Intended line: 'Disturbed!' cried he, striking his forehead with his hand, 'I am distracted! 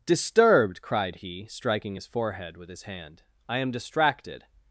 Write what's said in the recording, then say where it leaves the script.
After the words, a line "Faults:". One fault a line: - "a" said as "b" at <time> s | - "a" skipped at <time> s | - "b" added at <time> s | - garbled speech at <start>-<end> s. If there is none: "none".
'Disturbed!' cried he, striking his forehead with his hand, 'I am distracted!
Faults:
none